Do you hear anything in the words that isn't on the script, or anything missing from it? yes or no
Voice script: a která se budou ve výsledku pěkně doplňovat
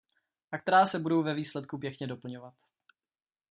no